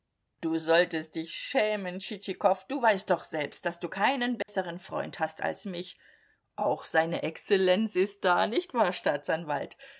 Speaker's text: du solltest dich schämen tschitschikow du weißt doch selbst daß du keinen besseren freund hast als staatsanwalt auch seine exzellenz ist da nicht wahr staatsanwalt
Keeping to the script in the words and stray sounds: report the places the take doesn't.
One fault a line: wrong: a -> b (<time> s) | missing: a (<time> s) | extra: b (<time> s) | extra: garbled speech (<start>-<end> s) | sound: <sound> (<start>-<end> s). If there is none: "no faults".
sound: dropout (4.4-4.5 s)
wrong: staatsanwalt -> mich (5.7 s)